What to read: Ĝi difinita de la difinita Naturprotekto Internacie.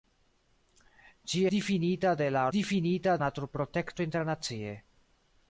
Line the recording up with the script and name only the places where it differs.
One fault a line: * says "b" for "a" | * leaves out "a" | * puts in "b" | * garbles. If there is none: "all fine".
all fine